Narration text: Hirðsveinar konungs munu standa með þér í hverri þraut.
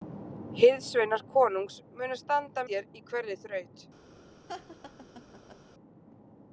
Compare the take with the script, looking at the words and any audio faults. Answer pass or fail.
fail